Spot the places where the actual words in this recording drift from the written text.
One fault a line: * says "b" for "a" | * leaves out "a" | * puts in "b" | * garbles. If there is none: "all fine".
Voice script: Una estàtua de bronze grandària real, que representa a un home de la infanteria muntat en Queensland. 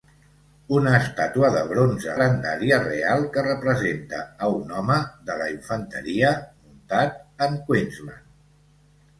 all fine